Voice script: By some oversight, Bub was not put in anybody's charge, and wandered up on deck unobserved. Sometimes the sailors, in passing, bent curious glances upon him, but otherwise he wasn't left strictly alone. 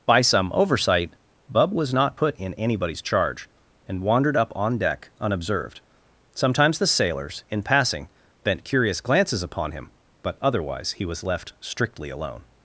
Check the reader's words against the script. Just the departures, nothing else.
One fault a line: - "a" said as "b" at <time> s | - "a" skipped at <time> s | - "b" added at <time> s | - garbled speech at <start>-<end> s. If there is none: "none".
- "wasn't" said as "was" at 11.1 s